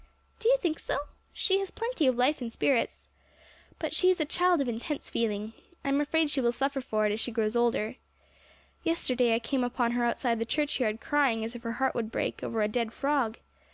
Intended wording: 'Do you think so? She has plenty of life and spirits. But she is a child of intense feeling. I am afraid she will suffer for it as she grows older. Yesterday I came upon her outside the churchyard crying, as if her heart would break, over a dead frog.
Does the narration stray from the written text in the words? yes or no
no